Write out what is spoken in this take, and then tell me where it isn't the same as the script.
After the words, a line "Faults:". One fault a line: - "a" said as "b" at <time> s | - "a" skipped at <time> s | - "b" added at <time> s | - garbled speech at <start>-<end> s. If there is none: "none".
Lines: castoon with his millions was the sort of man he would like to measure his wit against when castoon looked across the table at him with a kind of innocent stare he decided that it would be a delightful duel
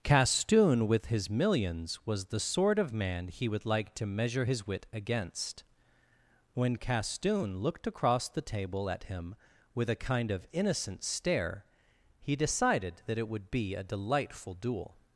castoon with his millions was the sort of man he would like to measure his wit against when castoon looked across the table at him with a kind of innocent stare he decided that it would be a delightful duel
Faults:
none